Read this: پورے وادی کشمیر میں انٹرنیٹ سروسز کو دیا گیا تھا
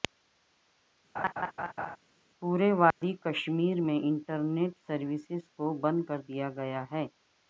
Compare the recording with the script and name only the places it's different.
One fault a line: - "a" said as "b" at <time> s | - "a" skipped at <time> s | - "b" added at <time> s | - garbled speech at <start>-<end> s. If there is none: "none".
- "بند کر" added at 5.8 s
- "تھا" said as "ہے" at 6.9 s